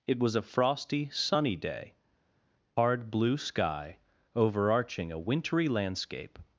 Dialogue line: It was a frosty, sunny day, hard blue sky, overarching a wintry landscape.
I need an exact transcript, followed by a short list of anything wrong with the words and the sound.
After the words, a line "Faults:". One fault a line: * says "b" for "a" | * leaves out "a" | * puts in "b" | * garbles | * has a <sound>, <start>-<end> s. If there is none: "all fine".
It was a frosty, sunny day, hard blue sky, overarching a wintry landscape.
Faults:
all fine